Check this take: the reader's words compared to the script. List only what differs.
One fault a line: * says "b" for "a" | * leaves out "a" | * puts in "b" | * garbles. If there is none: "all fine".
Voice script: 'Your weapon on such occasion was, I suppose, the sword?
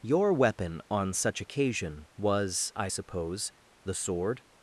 all fine